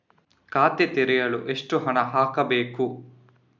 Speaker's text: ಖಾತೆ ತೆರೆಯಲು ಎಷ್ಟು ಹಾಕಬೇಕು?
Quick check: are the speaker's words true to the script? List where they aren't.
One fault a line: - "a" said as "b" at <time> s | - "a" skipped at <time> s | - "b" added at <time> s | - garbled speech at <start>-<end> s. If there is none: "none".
- "ಹಣ" added at 1.8 s